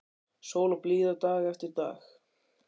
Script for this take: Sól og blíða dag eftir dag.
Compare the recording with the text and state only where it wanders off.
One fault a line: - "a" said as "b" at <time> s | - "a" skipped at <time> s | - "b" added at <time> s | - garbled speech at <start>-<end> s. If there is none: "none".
none